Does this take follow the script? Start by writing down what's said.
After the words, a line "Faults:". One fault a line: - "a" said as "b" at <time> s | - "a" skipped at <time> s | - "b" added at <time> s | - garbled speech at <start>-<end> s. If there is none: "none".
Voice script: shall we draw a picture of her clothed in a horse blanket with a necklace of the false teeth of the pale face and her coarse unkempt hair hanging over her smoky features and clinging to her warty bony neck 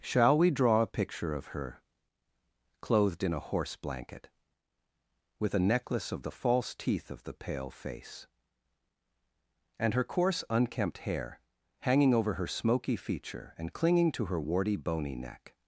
shall we draw a picture of her clothed in a horse blanket with a necklace of the false teeth of the pale face and her coarse unkempt hair hanging over her smoky feature and clinging to her warty bony neck
Faults:
- "features" said as "feature" at 12.9 s